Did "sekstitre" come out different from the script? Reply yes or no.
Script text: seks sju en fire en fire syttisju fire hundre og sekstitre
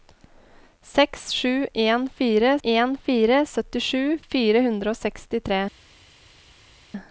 no